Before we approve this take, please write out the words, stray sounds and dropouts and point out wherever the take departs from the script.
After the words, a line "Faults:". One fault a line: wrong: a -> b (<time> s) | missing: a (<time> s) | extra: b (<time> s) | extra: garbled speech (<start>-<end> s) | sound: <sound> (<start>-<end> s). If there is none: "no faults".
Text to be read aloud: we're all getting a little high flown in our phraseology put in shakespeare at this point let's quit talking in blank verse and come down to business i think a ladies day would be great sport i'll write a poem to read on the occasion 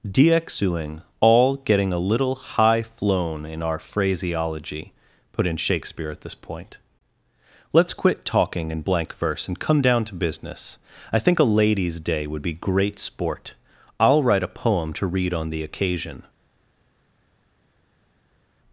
dxuing all getting a little high flown in our phraseology put in shakespeare at this point let's quit talking in blank verse and come down to business i think a ladies day would be great sport i'll write a poem to read on the occasion
Faults:
wrong: we're -> dxuing (0.0 s)